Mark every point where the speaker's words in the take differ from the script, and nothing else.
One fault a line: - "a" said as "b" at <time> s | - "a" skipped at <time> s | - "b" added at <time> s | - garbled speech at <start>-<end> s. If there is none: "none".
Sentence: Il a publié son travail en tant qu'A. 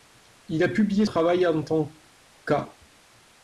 - "son" skipped at 1.1 s